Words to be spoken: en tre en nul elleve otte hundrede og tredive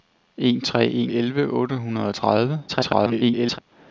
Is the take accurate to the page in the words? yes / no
no